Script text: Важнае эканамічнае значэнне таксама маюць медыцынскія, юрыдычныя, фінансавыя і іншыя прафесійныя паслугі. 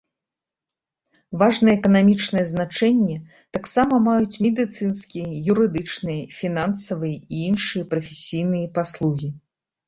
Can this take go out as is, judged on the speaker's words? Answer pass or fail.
pass